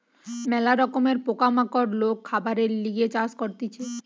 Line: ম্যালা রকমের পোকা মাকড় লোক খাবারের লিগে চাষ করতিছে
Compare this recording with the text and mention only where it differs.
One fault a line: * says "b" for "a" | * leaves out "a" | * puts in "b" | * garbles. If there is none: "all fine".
all fine